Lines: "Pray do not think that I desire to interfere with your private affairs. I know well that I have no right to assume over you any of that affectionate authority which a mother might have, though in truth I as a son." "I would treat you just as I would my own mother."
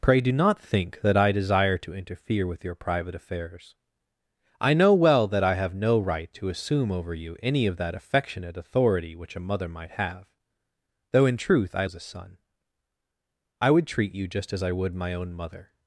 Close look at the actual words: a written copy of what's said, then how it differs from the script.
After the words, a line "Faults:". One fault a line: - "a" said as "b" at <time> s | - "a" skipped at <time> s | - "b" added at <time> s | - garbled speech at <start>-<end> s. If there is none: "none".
"Pray do not think that I desire to interfere with your private affairs. I know well that I have no right to assume over you any of that affectionate authority which a mother might have, though in truth I as a son." "I would treat you just as I would my own mother."
Faults:
none